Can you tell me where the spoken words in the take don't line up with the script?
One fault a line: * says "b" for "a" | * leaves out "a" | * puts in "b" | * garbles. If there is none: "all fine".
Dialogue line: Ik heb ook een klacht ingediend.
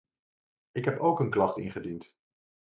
all fine